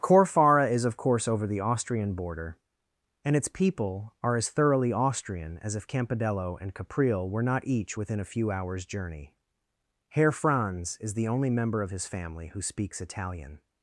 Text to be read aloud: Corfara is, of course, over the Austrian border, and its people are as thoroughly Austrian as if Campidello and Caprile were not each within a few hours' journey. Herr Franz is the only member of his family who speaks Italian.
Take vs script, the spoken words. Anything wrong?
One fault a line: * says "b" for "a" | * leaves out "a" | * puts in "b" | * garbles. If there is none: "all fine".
all fine